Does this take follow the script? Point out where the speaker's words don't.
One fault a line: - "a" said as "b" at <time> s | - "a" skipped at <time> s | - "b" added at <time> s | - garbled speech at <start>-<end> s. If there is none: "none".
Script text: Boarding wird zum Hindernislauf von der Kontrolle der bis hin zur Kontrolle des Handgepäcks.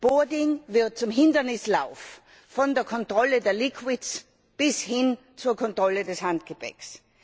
none